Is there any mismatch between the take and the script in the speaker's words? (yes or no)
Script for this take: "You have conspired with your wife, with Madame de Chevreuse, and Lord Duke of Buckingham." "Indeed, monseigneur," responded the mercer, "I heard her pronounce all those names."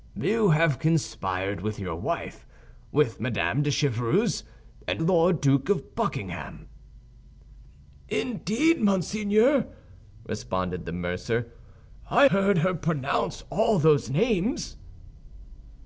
no